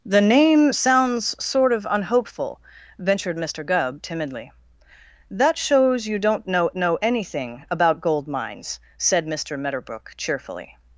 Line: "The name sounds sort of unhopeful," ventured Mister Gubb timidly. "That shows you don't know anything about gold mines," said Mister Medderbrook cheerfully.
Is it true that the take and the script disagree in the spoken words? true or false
true